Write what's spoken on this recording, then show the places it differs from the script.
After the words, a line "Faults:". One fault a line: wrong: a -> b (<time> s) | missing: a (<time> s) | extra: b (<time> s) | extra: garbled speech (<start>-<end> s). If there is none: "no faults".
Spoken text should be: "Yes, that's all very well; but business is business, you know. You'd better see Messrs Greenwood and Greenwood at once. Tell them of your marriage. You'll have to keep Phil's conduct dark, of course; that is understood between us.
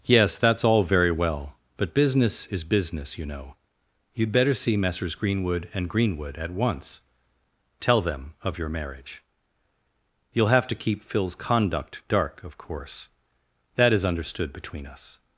"Yes, that's all very well; but business is business, you know. You'd better see Messrs Greenwood and Greenwood at once. Tell them of your marriage. You'll have to keep Phil's conduct dark, of course; that is understood between us.
Faults:
no faults